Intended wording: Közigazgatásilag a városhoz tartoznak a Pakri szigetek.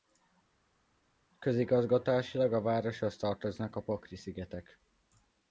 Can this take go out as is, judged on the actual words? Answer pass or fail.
pass